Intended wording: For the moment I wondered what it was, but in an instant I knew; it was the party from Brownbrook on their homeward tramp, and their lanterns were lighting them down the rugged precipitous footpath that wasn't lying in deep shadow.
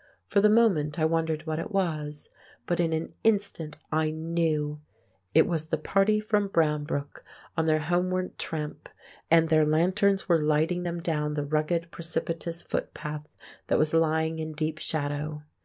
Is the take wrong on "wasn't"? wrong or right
wrong